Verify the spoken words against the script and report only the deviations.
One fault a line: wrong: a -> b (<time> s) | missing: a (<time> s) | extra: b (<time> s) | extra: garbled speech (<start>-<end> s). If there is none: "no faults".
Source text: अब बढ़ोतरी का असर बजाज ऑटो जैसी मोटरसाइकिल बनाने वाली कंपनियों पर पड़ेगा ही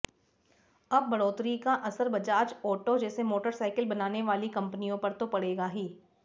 extra: तो (5.1 s)